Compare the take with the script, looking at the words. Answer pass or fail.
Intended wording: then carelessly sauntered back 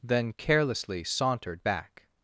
pass